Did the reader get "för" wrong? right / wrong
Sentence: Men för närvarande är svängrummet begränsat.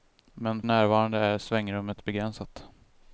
wrong